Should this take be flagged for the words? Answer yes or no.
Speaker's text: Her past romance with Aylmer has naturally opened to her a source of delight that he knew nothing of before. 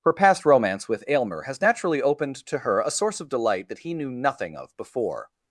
no